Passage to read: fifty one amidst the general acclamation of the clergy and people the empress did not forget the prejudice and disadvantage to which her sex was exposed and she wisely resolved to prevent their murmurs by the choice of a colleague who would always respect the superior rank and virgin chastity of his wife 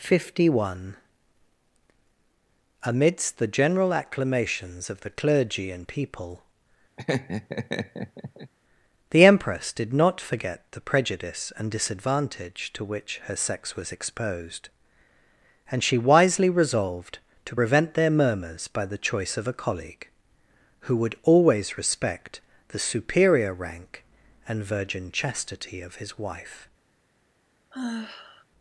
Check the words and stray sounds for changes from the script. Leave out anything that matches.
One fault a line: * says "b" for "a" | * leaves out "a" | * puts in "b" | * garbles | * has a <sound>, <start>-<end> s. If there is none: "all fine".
* says "acclamations" for "acclamation"
* has a laugh, 7.0-8.5 s
* has a sigh, 27.7-28.4 s